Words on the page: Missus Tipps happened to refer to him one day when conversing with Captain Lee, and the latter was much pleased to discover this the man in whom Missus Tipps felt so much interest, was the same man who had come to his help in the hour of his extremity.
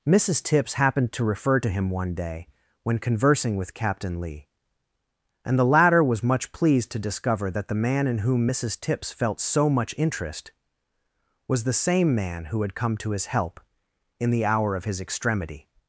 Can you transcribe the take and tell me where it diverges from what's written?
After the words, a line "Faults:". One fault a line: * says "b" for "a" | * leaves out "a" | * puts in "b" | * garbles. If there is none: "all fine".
Missus Tipps happened to refer to him one day when conversing with Captain Lee, and the latter was much pleased to discover that the man in whom Missus Tipps felt so much interest, was the same man who had come to his help in the hour of his extremity.
Faults:
* says "that" for "this"